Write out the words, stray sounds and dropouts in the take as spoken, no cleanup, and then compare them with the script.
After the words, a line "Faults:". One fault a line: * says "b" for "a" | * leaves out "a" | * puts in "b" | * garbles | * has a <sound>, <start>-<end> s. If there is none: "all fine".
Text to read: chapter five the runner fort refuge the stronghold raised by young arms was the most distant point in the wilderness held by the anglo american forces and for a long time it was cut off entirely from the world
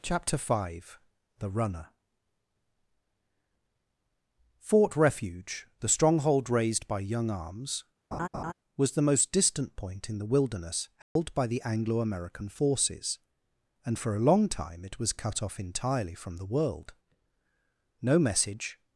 chapter five the runner fort refuge the stronghold raised by young arms was the most distant point in the wilderness held by the anglo american forces and for a long time it was cut off entirely from the world no message
Faults:
* has a laugh, 8.1-8.5 s
* has a dropout, 11.0-11.2 s
* puts in "no message"